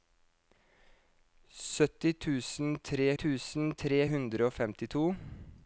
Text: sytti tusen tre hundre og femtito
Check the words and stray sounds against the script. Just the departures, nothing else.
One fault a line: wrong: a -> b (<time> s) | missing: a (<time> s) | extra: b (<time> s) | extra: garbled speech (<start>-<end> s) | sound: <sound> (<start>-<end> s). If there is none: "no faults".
extra: tusen tre (3.2 s)